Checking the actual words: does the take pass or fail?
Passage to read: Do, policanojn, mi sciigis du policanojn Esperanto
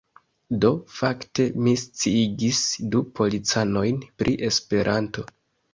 fail